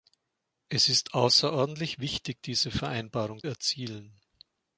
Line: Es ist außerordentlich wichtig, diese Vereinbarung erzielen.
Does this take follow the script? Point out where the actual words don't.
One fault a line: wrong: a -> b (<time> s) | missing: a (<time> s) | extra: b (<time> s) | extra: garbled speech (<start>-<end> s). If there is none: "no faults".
no faults